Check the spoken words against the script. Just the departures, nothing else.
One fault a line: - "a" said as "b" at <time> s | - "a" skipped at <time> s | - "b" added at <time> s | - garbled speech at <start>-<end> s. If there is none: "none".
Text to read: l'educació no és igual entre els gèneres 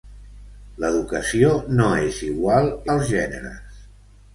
- "entre" skipped at 2.7 s